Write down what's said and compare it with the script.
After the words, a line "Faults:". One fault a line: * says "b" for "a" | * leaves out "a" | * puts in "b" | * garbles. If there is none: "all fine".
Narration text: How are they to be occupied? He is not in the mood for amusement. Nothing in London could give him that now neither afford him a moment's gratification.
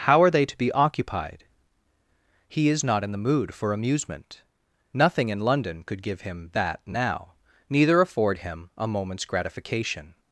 How are they to be occupied? He is not in the mood for amusement. Nothing in London could give him that now neither afford him a moment's gratification.
Faults:
all fine